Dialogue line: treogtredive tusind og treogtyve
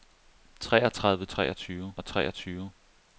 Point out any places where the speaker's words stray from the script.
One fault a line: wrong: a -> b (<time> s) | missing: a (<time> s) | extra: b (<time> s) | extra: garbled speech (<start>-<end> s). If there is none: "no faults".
wrong: tusind -> treogtyve (1.3 s)